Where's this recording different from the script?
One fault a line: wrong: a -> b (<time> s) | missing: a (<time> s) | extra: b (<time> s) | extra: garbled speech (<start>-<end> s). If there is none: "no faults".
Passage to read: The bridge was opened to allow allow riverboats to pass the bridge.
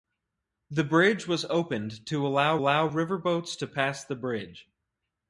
no faults